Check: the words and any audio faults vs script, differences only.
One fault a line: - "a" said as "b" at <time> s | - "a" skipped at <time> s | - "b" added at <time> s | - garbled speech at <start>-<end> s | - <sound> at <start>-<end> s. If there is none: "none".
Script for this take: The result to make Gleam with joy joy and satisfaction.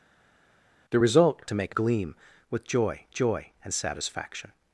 none